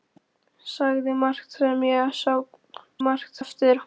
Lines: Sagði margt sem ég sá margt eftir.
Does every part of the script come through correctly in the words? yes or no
yes